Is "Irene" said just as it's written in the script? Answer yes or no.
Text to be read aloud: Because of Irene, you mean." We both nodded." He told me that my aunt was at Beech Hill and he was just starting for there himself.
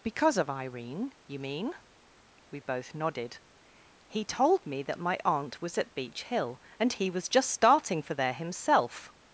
yes